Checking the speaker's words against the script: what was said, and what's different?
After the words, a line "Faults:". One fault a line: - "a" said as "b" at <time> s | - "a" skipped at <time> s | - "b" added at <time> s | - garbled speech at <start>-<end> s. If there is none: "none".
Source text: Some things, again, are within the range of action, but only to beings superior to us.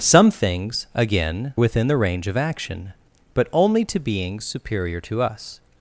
Some things, again, within the range of action, but only to beings superior to us.
Faults:
- "are" skipped at 1.5 s